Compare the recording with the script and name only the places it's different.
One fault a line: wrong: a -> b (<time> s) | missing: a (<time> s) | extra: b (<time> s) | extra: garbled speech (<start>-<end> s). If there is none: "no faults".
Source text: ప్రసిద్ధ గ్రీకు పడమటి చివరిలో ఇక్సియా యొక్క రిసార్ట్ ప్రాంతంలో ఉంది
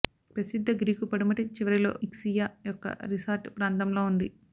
no faults